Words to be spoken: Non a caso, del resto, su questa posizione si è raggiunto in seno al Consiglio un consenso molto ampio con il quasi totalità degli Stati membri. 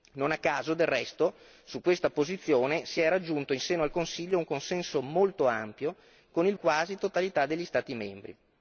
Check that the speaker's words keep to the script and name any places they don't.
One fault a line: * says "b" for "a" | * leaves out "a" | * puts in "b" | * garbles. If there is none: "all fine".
all fine